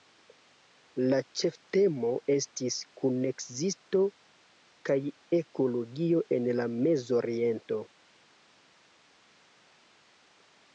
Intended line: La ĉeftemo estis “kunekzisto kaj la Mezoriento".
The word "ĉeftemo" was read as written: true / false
true